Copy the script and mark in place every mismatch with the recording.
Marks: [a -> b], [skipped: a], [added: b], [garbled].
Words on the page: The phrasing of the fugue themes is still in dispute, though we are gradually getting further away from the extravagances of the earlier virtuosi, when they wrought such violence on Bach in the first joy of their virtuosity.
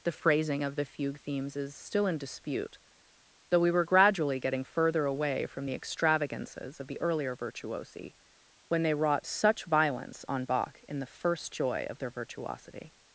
The phrasing of the fugue themes is still in dispute, though we [are -> were] gradually getting further away from the extravagances of the earlier virtuosi, when they wrought such violence on Bach in the first joy of their virtuosity.